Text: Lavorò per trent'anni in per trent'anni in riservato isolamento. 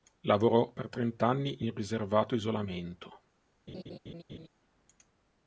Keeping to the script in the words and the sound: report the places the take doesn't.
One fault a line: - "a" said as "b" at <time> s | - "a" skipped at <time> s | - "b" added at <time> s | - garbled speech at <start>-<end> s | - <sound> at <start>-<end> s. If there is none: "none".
- "per trent'anni in" skipped at 1.7 s
- laugh at 3.7-4.5 s